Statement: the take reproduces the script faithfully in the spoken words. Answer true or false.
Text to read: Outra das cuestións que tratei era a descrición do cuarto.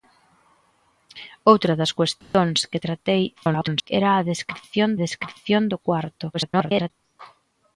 false